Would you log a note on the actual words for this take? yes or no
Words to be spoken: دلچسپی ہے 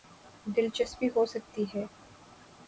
yes